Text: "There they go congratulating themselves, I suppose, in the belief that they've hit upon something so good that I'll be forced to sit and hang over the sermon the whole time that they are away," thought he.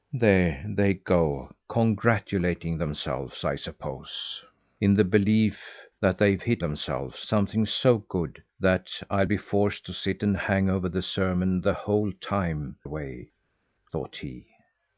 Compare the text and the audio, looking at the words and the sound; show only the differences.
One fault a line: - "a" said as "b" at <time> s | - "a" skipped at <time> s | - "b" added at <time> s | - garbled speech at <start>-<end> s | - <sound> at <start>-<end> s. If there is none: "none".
- "upon" said as "themselves" at 6.6 s
- "that they are" skipped at 12.8 s